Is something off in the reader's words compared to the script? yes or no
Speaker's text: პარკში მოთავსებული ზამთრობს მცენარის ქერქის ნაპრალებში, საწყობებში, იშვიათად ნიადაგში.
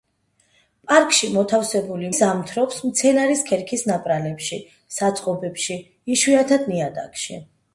no